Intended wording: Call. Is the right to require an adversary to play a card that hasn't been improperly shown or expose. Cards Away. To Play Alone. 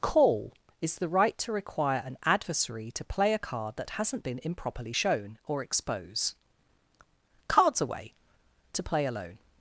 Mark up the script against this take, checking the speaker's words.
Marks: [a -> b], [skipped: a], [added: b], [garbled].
Call. Is the right to require an adversary to play a card that hasn't been improperly shown or expose. Cards Away. To Play Alone.